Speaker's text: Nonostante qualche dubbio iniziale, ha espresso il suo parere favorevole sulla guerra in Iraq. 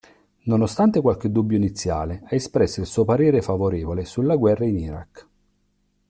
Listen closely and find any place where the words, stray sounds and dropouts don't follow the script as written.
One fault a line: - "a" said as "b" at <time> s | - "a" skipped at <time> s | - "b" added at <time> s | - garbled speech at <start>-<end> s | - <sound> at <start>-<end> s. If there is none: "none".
none